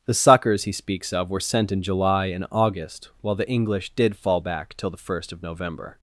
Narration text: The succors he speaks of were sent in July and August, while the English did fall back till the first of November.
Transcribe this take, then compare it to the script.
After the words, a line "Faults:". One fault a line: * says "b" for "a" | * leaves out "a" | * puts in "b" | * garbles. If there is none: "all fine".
The succors he speaks of were sent in July and August, while the English did fall back till the first of November.
Faults:
all fine